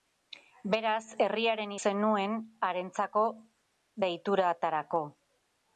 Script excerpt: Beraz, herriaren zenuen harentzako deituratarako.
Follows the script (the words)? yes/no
yes